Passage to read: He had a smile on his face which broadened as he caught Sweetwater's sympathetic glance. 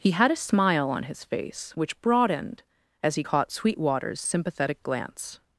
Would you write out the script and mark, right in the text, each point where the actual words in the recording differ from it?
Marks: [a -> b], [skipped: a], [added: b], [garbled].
He had a smile on his face which broadened as he caught Sweetwater's sympathetic glance.